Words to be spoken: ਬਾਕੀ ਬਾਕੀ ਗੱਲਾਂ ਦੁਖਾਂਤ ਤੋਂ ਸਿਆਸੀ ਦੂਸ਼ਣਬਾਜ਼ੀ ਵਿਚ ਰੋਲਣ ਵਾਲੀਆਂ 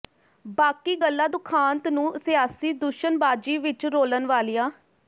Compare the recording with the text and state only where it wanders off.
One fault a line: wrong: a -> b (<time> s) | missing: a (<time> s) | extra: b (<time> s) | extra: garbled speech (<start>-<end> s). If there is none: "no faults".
missing: ਬਾਕੀ (0.9 s)
wrong: ਤੋਂ -> ਨੂੰ (1.9 s)